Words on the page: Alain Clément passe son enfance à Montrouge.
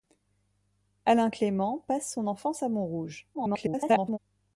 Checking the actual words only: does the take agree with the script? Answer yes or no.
no